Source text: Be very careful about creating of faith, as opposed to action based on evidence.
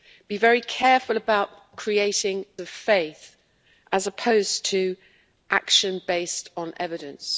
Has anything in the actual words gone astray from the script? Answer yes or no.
no